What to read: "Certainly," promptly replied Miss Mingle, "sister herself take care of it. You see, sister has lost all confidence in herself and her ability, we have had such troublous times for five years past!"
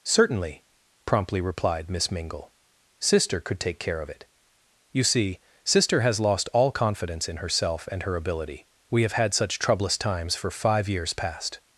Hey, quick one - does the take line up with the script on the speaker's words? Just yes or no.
no